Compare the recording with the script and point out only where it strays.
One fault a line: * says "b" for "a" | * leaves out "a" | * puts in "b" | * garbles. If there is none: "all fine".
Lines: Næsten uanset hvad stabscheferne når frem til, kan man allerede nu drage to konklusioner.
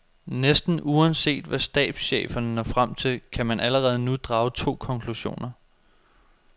all fine